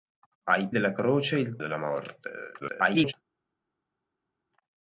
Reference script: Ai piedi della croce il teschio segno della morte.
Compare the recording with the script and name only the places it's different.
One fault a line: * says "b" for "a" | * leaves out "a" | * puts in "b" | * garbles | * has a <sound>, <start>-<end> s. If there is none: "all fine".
* leaves out "piedi"
* leaves out "teschio segno"
* garbles